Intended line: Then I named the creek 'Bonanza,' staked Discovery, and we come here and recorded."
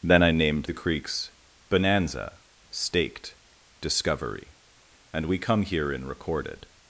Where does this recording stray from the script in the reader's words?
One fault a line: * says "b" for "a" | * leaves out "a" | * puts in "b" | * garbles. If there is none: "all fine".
* says "creeks" for "creek"
* says "in" for "and"